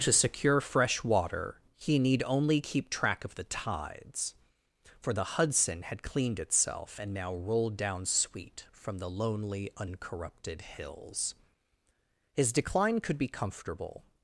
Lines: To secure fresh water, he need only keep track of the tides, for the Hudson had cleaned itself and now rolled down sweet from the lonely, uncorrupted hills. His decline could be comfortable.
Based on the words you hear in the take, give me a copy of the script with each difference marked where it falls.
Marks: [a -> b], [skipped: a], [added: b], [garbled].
To secure fresh water, he need only keep track of the tides, for the Hudson had cleaned itself and now rolled down sweet from the lonely, uncorrupted hills. His decline could be comfortable.